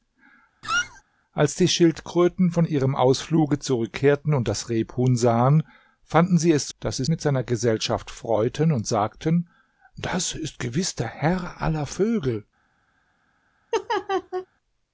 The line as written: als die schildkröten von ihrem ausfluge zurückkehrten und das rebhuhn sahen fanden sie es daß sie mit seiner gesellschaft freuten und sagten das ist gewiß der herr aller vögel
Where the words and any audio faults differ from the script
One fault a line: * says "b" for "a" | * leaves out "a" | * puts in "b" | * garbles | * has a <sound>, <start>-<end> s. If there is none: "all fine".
* has a squeak, 0.6-1.0 s
* has a laugh, 13.7-14.5 s